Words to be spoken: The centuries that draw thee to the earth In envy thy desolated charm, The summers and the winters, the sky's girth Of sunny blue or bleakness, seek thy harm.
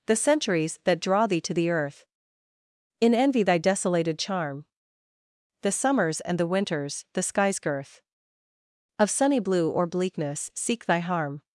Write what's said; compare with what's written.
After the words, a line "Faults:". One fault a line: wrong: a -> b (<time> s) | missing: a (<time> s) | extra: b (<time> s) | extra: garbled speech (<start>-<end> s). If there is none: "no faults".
The centuries that draw thee to the earth In envy thy desolated charm, The summers and the winters, the sky's girth Of sunny blue or bleakness, seek thy harm.
Faults:
no faults